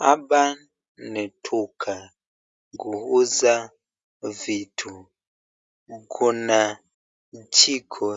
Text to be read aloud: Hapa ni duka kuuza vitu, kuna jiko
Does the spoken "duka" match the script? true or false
true